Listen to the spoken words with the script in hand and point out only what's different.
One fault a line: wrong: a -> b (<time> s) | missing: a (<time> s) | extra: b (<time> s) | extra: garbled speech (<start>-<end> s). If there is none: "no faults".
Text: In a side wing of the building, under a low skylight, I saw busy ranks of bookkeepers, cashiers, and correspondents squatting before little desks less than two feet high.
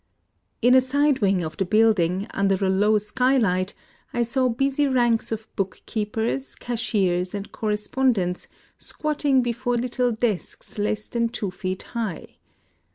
no faults